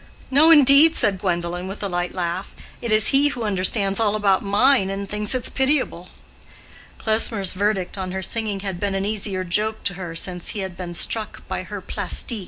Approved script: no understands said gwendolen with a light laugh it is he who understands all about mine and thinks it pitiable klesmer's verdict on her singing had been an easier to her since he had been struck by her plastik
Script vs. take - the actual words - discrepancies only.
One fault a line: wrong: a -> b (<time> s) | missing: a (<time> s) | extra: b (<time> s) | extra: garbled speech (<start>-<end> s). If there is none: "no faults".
wrong: understands -> indeed (0.5 s)
extra: joke (9.4 s)